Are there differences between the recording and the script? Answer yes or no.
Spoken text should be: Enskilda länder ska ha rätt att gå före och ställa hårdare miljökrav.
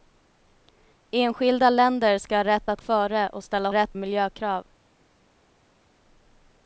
yes